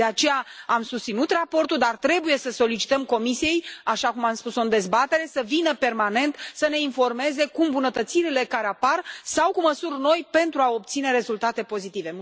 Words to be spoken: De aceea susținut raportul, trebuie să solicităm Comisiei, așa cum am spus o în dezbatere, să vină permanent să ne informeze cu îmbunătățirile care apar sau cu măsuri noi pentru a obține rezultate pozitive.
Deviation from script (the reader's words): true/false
true